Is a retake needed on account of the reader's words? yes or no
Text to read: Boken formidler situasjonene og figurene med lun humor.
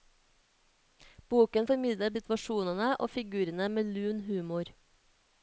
no